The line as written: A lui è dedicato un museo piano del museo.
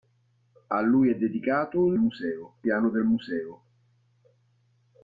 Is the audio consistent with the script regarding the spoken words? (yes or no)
yes